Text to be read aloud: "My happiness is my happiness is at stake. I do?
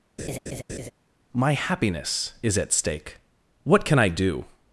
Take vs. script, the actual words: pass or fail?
fail